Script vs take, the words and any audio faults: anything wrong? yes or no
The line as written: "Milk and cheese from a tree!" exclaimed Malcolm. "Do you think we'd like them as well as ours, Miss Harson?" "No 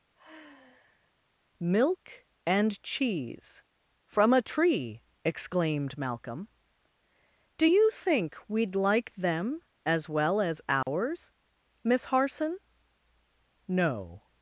yes